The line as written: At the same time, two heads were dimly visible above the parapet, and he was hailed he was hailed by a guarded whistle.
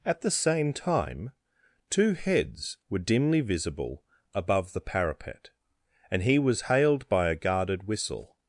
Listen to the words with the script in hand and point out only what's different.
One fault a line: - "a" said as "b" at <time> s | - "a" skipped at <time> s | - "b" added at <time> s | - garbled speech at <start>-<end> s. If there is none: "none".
- "he was hailed" skipped at 7.1 s